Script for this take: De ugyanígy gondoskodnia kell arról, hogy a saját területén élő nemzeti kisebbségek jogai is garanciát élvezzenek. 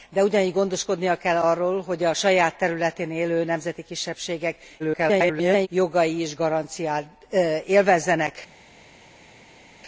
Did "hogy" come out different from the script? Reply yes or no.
no